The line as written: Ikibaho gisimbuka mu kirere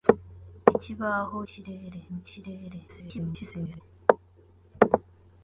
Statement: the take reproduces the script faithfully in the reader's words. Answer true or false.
false